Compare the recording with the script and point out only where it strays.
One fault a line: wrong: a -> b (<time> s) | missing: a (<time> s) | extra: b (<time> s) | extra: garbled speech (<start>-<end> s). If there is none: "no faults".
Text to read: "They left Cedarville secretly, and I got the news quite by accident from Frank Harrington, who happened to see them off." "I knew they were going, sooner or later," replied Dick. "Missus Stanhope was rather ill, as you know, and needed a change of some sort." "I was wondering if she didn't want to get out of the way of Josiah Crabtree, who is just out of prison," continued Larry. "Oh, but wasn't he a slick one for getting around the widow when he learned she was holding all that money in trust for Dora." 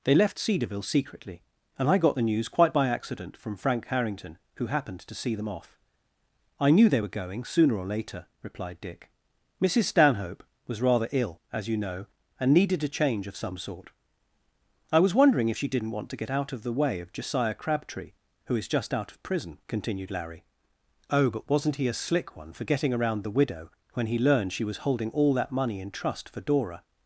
no faults